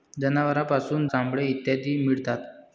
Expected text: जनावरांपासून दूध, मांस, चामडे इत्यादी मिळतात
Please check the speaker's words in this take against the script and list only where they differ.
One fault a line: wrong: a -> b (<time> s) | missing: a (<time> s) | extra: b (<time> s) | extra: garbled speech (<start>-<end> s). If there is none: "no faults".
missing: दूध मांस (1.1 s)